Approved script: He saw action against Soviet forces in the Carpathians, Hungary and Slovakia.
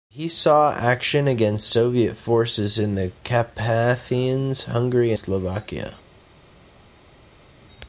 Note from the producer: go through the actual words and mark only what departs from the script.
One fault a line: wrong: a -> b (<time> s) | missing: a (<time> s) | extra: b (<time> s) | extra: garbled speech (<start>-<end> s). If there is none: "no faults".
missing: and (5.1 s)